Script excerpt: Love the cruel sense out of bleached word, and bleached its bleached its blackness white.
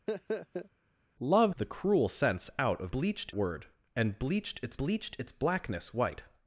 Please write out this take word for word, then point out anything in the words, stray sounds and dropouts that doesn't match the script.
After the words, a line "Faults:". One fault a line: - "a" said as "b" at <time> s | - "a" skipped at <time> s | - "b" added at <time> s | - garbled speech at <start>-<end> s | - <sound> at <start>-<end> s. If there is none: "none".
Love the cruel sense out of bleached word, and bleached its bleached its blackness white.
Faults:
- laugh at 0.1-0.7 s